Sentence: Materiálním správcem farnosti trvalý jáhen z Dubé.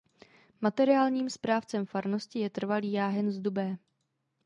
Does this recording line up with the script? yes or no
no